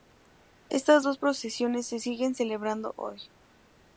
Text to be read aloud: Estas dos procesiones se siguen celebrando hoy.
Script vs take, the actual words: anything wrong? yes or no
no